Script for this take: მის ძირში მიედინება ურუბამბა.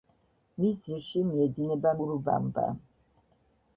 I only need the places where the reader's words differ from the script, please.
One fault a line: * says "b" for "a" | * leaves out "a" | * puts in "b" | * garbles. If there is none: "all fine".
all fine